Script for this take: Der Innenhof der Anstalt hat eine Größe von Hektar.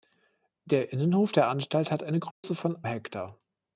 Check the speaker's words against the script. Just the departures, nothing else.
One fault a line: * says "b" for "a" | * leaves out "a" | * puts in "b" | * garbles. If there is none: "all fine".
all fine